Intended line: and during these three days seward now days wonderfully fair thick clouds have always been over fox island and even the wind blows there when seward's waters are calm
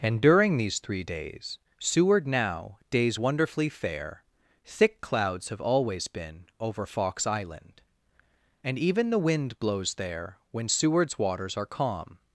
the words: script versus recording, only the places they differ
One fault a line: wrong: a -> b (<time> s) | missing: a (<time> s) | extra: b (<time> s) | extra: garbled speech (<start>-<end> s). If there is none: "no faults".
no faults